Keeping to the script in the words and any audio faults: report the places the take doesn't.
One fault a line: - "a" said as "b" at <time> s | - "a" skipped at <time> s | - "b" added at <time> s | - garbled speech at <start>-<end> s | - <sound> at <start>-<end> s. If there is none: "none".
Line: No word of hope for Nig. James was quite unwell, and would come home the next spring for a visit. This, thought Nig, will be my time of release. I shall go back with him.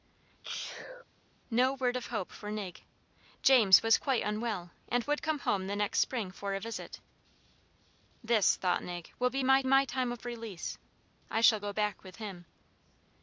- sneeze at 0.4-1.0 s
- "my" added at 9.7 s